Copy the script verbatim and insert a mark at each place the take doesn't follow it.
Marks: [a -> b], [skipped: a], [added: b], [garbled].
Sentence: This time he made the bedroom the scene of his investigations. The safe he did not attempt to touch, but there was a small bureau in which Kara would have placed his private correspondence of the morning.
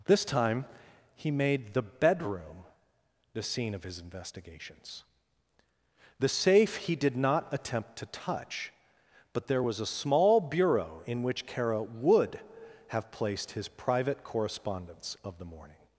This time he made the bedroom the scene of his investigations. The safe he did not attempt to touch, but there was a small bureau in which Kara would have placed his private correspondence of the morning.